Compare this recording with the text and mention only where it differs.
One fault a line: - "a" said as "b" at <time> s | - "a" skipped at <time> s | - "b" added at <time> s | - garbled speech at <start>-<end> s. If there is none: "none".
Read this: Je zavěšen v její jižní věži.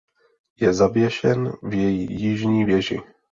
none